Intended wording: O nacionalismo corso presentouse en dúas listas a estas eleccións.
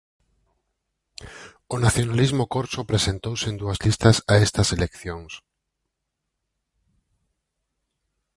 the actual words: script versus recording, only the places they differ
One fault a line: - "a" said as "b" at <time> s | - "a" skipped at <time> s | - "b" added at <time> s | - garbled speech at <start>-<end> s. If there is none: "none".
none